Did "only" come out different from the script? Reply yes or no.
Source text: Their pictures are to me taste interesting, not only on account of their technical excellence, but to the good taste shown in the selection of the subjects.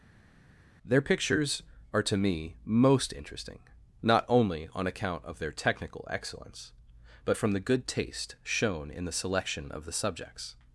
no